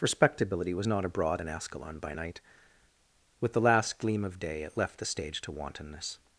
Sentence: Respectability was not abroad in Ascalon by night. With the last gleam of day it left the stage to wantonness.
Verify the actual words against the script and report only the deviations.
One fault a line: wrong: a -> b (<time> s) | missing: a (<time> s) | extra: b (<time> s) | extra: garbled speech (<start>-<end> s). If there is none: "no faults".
no faults